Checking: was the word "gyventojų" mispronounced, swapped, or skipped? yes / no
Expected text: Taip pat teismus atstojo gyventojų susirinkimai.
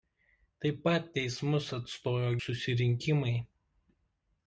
yes